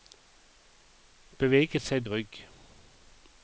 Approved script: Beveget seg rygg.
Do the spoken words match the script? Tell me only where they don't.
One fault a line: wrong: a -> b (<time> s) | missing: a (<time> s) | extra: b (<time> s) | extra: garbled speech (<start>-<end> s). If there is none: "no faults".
no faults